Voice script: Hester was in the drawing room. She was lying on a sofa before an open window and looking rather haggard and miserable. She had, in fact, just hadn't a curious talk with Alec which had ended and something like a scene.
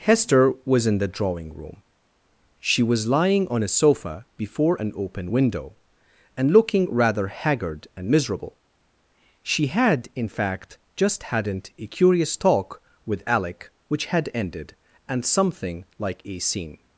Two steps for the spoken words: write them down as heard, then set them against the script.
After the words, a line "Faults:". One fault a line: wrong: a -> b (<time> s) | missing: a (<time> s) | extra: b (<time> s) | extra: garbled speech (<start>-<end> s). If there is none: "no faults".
Hester was in the drawing room. She was lying on a sofa before an open window and looking rather haggard and miserable. She had, in fact, just hadn't a curious talk with Alec which had ended and something like a scene.
Faults:
no faults